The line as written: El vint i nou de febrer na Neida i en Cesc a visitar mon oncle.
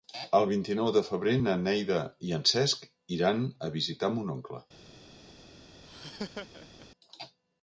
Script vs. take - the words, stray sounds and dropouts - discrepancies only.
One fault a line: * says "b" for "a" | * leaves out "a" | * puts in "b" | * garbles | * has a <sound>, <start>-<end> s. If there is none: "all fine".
* puts in "iran"
* has a laugh, 5.8-6.9 s